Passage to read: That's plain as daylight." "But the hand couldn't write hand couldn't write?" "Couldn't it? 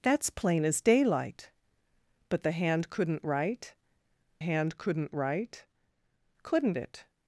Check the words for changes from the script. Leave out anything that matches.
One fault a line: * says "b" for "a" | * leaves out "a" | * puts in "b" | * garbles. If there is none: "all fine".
all fine